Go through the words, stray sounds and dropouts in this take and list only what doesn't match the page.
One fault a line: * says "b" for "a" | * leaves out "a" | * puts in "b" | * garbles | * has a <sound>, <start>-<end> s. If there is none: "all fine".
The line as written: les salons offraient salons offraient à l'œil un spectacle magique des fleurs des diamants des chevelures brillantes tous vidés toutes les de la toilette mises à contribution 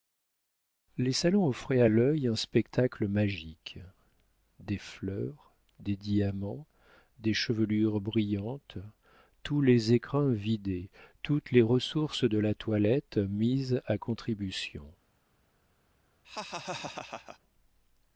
* leaves out "salons offraient"
* puts in "les écrins"
* puts in "ressources"
* has a laugh, 16.2-17.4 s